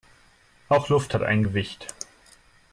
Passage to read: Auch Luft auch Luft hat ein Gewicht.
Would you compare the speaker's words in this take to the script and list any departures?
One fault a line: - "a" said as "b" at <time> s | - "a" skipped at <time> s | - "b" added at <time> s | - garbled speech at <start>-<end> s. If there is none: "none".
- "auch Luft" skipped at 1.1 s